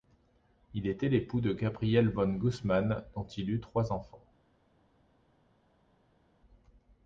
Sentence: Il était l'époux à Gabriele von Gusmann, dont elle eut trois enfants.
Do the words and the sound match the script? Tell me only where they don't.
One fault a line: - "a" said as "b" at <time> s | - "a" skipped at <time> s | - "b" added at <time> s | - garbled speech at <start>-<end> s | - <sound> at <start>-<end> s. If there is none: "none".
- "à" said as "de" at 1.4 s
- "elle" said as "il" at 3.3 s